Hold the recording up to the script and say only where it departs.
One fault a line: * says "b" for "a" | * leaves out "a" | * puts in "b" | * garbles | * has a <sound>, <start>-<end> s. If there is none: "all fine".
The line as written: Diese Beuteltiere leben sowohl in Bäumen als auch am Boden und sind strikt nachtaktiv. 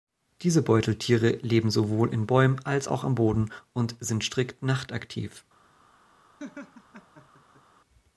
* has a laugh, 6.4-7.6 s